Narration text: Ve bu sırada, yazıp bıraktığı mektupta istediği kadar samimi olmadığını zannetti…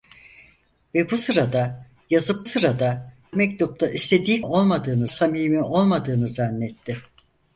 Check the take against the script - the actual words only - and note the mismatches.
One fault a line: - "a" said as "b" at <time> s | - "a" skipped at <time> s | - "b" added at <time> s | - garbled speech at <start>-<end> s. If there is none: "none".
- "bıraktığı" said as "sırada" at 2.4 s
- "kadar" said as "olmadığını" at 4.4 s